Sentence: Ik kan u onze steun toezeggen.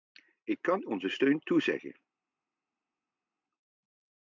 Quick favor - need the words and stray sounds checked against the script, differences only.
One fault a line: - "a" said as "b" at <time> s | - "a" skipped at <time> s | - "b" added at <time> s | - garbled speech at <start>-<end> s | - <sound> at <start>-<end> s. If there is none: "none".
- "u" skipped at 0.8 s